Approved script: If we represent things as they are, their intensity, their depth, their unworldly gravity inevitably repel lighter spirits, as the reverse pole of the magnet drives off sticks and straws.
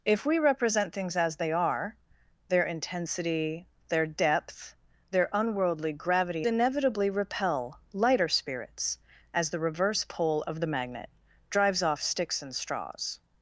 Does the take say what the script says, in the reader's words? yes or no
yes